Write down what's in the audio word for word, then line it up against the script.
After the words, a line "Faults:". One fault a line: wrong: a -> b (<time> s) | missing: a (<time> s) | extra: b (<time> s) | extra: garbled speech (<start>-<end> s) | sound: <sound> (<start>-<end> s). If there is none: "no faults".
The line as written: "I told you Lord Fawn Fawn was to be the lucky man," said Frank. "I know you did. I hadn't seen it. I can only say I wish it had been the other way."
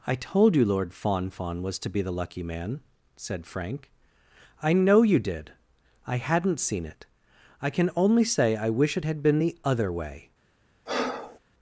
"I told you Lord Fawn Fawn was to be the lucky man," said Frank. "I know you did. I hadn't seen it. I can only say I wish it had been the other way."
Faults:
sound: breath (10.9-11.4 s)